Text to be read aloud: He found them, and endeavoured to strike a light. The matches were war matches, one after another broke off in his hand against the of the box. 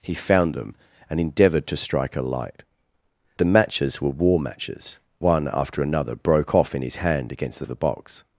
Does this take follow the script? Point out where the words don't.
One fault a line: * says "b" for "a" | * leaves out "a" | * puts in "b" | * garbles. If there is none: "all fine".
all fine